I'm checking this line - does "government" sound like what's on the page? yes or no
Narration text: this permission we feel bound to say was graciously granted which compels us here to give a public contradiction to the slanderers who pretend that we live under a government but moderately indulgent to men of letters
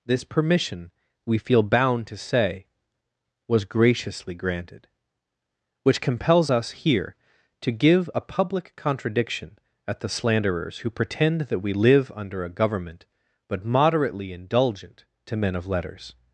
yes